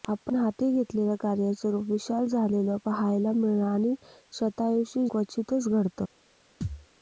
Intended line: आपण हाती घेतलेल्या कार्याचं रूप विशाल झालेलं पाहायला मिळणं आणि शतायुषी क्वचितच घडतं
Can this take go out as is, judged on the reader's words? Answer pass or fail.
pass